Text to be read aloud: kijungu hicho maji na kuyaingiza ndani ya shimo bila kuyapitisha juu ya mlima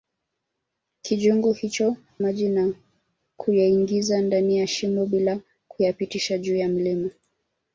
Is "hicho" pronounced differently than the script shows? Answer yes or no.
no